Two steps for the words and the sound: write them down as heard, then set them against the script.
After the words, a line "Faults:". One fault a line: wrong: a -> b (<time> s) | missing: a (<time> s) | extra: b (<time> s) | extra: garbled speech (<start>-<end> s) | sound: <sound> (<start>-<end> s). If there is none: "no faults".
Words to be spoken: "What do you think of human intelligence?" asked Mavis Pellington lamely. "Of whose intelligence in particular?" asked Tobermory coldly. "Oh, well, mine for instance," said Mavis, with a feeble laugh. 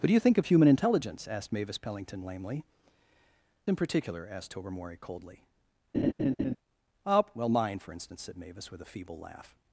"What do you think of human intelligence?" asked Mavis Pellington lamely. "In particular?" asked Tobermory coldly. "Oh, well, mine for instance," said Mavis, with a feeble laugh.
Faults:
missing: Of whose intelligence (2.6 s)
sound: laugh (5.9-6.6 s)